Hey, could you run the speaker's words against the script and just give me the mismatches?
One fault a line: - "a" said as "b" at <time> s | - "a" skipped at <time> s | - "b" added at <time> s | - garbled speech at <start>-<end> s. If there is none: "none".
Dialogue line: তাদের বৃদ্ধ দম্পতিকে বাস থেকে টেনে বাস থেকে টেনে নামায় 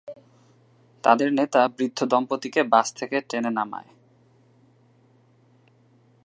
- "নেতা" added at 1.3 s
- "বাস থেকে টেনে" skipped at 3.5 s